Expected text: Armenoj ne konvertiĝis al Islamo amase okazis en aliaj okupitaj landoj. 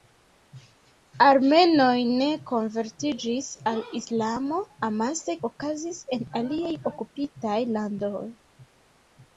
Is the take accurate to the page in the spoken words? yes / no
yes